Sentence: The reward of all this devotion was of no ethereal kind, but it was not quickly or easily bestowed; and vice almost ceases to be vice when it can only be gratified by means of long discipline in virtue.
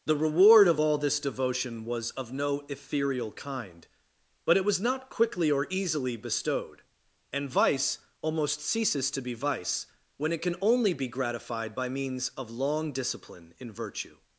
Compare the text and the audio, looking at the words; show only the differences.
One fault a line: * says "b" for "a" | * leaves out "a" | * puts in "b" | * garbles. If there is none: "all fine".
all fine